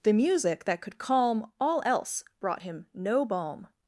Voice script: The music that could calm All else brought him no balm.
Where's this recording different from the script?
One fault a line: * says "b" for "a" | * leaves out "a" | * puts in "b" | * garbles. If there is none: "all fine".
all fine